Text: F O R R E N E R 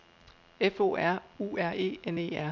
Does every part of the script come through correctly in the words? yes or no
no